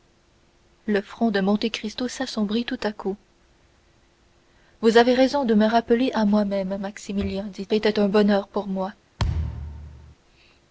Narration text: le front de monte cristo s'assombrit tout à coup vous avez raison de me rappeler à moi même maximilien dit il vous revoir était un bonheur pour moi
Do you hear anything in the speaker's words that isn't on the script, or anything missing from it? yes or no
yes